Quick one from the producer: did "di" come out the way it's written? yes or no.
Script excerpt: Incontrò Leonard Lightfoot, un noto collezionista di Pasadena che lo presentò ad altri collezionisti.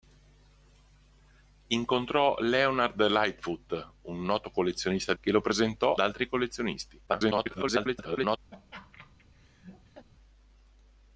no